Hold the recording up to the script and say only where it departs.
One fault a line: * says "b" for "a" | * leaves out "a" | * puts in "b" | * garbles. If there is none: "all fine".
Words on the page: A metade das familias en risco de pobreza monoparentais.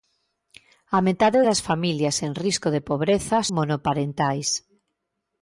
all fine